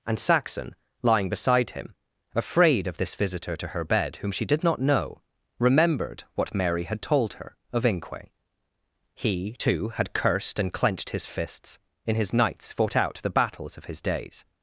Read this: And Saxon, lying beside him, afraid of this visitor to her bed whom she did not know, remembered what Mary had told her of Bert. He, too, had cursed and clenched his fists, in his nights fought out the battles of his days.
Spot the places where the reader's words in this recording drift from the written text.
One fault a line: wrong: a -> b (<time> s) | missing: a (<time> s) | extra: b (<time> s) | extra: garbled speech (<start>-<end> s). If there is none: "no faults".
wrong: Bert -> Inque (7.8 s)